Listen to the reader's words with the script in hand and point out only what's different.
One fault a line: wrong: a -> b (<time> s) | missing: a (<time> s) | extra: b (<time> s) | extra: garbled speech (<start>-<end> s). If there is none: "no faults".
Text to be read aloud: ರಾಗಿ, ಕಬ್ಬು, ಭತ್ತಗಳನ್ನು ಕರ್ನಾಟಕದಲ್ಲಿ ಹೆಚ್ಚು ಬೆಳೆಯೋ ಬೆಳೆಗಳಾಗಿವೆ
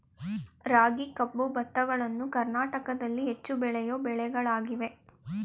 no faults